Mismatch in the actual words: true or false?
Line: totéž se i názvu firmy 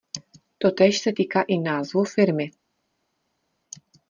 true